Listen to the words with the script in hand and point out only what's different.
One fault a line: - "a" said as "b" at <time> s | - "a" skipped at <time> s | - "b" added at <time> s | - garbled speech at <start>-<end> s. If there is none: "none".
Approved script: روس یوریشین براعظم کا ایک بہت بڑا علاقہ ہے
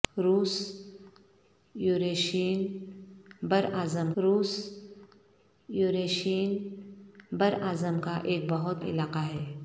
- "روس یوریشین براعظم" added at 4.2 s
- "بڑا" skipped at 8.8 s